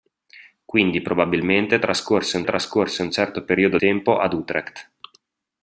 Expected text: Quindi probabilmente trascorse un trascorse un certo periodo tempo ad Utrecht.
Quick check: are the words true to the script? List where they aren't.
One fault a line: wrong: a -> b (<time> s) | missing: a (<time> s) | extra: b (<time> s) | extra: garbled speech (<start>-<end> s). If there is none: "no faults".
no faults